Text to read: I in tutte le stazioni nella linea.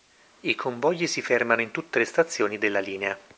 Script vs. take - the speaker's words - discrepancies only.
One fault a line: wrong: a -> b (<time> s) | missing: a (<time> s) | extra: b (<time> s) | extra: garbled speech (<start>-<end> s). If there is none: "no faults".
extra: convogli si fermano (0.6 s)
wrong: nella -> della (2.6 s)